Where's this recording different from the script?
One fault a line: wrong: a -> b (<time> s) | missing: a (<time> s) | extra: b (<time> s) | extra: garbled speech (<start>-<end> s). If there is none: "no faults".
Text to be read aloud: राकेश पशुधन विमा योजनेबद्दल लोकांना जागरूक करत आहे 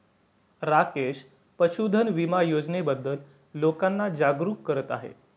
no faults